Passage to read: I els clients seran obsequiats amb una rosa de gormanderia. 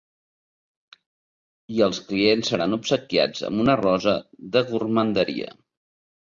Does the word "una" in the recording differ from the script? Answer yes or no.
no